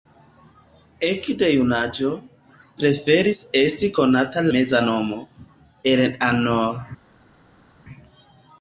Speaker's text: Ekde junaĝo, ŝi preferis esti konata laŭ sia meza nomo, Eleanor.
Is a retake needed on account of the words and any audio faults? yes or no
yes